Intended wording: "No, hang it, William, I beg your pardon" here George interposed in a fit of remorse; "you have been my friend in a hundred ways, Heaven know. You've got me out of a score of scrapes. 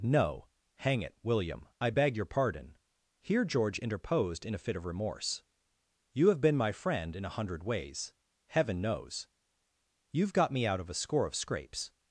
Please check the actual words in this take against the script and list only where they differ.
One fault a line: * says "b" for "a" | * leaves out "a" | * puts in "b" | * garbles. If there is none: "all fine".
* says "knows" for "know"